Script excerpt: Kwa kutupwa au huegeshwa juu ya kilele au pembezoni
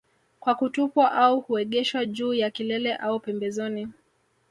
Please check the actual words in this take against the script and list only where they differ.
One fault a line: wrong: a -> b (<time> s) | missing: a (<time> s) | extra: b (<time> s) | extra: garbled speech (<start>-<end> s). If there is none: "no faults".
no faults